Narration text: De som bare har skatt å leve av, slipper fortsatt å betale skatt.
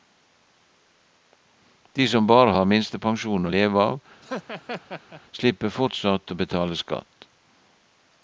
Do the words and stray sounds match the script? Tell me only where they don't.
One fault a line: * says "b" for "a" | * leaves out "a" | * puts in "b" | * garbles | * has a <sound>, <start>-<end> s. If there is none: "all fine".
* says "minstepensjon" for "skatt"
* has a laugh, 4.2-5.2 s